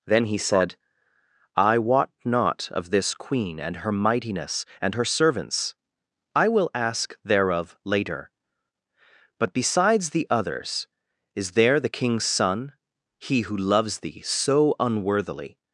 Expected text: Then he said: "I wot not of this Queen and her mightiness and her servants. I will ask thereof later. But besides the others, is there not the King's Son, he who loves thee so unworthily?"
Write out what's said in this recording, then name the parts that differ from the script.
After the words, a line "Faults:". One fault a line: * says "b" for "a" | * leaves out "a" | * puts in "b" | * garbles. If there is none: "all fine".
Then he said: "I wot not of this Queen and her mightiness and her servants. I will ask thereof later. But besides the others, is there the King's Son, he who loves thee so unworthily?"
Faults:
* leaves out "not"